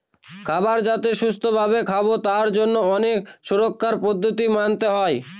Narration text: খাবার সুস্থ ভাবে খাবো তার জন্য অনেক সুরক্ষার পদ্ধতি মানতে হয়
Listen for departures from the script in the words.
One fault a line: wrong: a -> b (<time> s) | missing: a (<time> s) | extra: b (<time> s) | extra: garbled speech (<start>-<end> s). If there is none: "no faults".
extra: যাতে (0.9 s)